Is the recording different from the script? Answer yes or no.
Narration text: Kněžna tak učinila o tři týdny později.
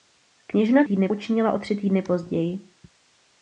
yes